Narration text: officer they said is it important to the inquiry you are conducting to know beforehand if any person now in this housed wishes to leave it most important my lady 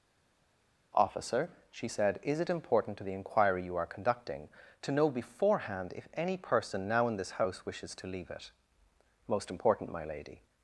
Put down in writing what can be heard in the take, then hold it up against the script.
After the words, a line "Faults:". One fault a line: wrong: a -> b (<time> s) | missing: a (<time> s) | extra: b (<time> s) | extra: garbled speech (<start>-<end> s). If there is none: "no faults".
officer she said is it important to the inquiry you are conducting to know beforehand if any person now in this house wishes to leave it most important my lady
Faults:
wrong: they -> she (1.7 s)
wrong: housed -> house (7.3 s)